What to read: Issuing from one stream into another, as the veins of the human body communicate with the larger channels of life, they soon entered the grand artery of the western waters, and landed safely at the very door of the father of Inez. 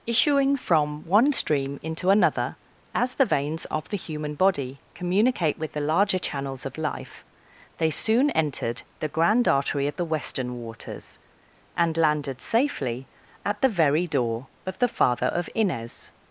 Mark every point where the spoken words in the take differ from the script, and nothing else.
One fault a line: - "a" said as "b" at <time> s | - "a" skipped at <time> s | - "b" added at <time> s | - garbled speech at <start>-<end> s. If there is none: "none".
none